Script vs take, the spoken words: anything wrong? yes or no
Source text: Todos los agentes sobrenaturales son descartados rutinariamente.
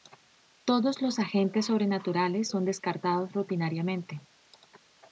no